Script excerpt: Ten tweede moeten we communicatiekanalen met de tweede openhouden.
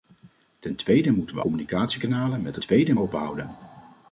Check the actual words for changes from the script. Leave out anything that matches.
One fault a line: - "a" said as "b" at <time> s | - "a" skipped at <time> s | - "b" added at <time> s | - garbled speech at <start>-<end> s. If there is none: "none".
none